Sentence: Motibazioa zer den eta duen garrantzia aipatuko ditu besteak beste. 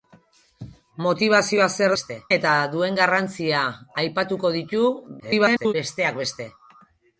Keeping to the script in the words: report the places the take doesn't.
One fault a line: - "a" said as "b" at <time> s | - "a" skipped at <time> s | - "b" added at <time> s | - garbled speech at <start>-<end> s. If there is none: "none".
- "den" said as "beste" at 2.0 s
- garbled speech at 5.2-5.7 s